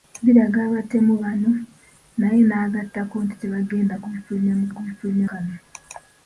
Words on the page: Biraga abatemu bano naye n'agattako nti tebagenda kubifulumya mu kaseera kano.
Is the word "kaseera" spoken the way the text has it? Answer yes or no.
no